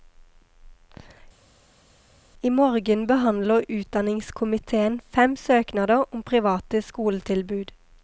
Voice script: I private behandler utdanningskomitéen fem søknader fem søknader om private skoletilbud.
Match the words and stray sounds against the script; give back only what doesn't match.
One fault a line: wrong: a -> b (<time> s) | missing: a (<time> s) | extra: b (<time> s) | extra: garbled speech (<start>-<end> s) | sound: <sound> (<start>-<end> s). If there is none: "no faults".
wrong: private -> morgen (2.5 s)
missing: fem søknader (6.0 s)